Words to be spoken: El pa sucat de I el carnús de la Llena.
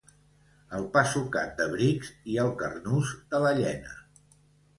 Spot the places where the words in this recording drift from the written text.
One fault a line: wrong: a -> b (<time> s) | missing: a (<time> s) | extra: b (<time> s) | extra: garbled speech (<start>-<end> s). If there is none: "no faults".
extra: Brics (1.7 s)